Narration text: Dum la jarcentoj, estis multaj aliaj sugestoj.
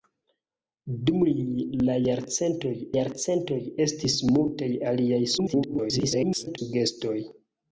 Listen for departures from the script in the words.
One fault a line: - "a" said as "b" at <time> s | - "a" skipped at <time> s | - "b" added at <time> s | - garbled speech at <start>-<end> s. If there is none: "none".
- "jarcentoj" added at 3.0 s
- garbled speech at 5.4-6.6 s